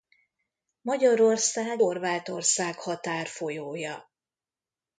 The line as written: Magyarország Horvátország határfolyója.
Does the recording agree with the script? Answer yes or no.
yes